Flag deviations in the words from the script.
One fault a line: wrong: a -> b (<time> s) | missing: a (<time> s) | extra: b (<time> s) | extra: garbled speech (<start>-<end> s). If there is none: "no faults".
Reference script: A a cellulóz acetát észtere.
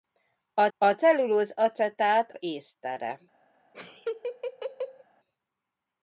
no faults